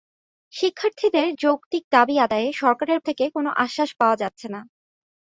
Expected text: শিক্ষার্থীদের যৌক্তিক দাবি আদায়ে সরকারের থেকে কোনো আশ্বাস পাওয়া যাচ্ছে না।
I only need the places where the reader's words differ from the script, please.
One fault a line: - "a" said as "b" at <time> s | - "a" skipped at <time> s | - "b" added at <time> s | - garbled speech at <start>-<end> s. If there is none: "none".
none